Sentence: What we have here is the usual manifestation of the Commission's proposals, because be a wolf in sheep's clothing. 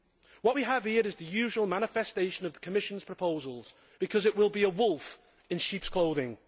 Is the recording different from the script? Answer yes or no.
yes